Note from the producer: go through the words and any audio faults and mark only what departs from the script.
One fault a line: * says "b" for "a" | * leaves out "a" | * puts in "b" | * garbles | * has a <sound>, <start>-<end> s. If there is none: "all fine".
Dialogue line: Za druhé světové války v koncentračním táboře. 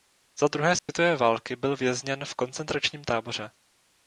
* has a dropout, 0.8-0.9 s
* puts in "byl vězněn"